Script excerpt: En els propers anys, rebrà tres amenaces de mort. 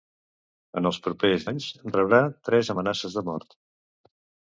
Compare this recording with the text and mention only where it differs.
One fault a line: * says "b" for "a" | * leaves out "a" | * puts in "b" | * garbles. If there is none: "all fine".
all fine